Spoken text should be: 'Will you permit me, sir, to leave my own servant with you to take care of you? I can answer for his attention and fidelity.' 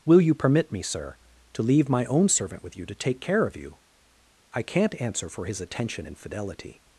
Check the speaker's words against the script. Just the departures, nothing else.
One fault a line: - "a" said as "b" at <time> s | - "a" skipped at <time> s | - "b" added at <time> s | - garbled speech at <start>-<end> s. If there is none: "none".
- "can" said as "can't" at 4.6 s